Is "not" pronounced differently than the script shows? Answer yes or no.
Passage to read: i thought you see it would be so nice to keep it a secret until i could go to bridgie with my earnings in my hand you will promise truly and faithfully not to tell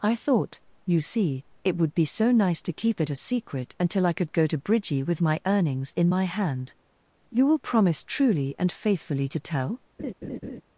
yes